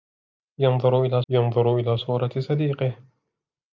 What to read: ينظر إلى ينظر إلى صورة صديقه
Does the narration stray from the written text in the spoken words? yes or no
no